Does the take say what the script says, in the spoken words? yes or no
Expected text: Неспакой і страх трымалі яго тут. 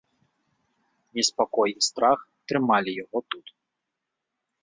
yes